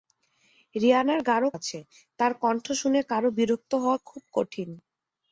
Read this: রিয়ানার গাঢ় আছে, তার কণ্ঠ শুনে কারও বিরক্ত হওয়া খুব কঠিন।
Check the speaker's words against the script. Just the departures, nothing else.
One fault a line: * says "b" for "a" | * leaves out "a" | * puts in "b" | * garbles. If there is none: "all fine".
all fine